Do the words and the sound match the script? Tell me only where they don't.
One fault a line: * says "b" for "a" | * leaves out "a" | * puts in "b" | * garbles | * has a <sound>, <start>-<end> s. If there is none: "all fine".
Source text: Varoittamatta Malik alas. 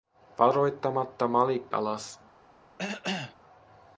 * has a cough, 2.8-3.3 s